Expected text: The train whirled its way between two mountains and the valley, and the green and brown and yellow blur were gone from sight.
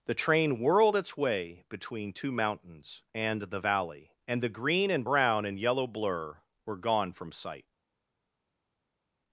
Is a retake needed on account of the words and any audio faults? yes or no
no